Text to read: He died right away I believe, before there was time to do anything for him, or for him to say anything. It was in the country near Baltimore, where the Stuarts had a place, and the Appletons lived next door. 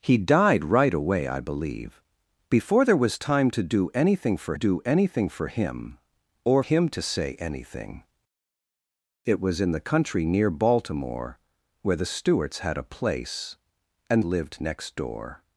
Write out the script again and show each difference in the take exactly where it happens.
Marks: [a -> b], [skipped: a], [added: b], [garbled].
He died right away I believe, before there was time to do anything for [him, or -> do anything] for him [added: or him] to say anything. It was in the country near Baltimore, where the Stuarts had a place, and [skipped: the Appletons] lived next door.